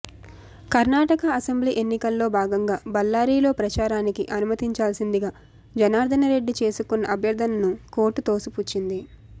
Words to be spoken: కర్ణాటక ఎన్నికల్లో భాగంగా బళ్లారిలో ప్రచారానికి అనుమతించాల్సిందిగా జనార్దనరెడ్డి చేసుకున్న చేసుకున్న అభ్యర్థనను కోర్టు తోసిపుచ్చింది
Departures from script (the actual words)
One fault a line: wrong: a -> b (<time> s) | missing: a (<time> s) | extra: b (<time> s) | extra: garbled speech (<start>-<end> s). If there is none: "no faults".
extra: అసెంబ్లీ (1.3 s)
missing: చేసుకున్న (7.1 s)